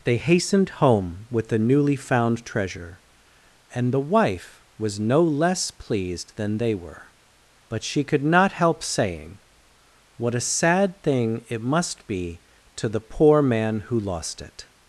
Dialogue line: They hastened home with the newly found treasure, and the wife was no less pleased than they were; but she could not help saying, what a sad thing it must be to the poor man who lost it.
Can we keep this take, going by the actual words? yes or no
yes